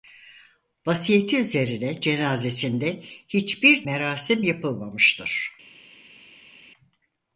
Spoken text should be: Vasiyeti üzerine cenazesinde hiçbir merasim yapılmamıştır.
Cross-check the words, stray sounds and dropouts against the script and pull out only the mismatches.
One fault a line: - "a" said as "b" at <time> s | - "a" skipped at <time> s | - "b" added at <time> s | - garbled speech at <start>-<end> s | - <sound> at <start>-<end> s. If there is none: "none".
none